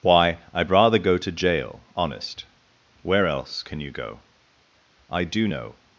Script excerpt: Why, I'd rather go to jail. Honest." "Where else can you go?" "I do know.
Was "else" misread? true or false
false